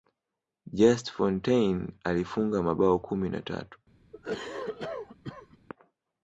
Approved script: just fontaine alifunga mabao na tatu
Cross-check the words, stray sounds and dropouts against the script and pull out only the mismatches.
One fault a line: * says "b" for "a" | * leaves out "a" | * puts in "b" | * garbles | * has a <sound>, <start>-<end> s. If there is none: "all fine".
* puts in "kumi"
* has a cough, 4.1-5.6 s